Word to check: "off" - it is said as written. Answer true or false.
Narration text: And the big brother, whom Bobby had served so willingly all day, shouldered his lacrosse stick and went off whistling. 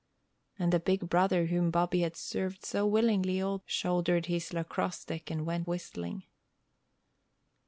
false